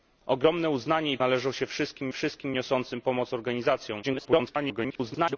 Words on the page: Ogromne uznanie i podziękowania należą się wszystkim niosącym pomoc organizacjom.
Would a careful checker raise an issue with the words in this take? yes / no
yes